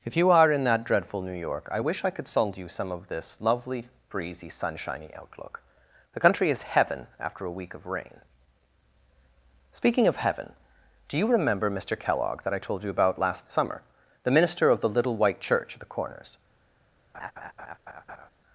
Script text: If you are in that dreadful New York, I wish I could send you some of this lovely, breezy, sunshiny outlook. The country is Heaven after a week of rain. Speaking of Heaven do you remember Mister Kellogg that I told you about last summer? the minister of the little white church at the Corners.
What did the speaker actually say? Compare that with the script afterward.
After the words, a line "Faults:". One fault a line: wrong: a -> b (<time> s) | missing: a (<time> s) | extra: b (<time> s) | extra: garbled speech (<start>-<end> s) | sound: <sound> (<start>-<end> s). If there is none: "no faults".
If you are in that dreadful New York, I wish I could send you some of this lovely, breezy, sunshiny outlook. The country is Heaven after a week of rain. Speaking of Heaven do you remember Mister Kellogg that I told you about last summer? the minister of the little white church at the Corners.
Faults:
sound: laugh (17.1-18.3 s)